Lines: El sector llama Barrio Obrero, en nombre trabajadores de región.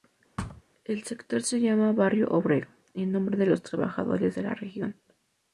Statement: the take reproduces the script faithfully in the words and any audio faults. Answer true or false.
false